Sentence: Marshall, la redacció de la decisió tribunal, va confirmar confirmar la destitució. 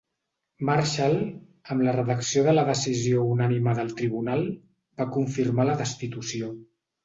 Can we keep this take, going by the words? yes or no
no